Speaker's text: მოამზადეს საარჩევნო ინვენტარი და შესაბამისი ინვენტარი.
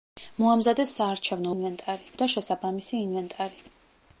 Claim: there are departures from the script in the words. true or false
false